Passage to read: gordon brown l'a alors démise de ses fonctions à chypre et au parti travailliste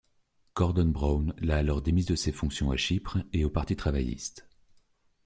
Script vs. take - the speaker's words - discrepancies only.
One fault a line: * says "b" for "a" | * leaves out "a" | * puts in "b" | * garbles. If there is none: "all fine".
all fine